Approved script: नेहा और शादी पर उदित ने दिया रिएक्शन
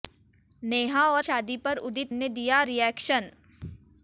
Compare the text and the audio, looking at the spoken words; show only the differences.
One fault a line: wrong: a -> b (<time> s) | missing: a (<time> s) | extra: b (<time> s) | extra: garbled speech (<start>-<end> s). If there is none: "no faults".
no faults